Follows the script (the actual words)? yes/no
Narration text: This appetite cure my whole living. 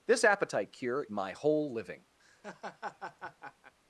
yes